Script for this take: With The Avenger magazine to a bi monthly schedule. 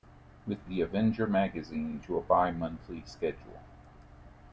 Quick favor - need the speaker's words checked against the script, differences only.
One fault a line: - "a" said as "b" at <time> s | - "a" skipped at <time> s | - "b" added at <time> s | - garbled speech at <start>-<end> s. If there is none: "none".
none